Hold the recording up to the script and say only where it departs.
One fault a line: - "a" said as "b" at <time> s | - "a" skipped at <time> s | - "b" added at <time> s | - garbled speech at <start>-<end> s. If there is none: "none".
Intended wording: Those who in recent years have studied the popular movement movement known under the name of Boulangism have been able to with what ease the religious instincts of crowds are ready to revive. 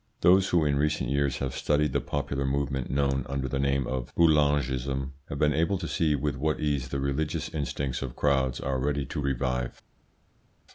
- "movement" skipped at 2.9 s
- "see" added at 5.9 s